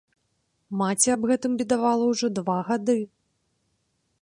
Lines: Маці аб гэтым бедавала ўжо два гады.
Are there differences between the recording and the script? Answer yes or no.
no